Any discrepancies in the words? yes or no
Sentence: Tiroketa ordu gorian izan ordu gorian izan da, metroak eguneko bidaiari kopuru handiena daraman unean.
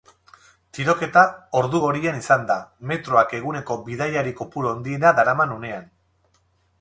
yes